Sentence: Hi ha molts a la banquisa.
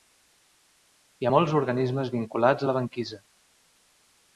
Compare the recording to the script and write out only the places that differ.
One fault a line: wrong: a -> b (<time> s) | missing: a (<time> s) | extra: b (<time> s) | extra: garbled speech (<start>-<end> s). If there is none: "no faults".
extra: organismes vinculats (1.6 s)